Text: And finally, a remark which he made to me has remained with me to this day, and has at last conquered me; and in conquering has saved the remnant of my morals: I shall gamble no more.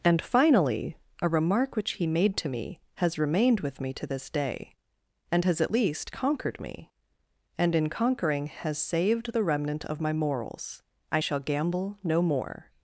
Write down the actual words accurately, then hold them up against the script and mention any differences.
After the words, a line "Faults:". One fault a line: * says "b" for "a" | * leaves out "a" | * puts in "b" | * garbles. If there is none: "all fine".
And finally, a remark which he made to me has remained with me to this day, and has at least conquered me; and in conquering has saved the remnant of my morals: I shall gamble no more.
Faults:
* says "least" for "last"